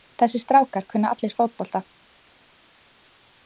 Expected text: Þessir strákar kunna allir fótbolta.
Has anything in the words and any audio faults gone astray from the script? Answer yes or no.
no